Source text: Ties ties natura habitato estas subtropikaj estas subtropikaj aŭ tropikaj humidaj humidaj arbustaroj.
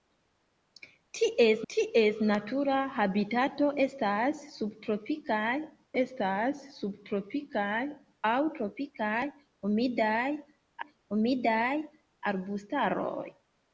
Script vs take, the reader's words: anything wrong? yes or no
no